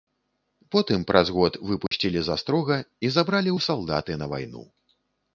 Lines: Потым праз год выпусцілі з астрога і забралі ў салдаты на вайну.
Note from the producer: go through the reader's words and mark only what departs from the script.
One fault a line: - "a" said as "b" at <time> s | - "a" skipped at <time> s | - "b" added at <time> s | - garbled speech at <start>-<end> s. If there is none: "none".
none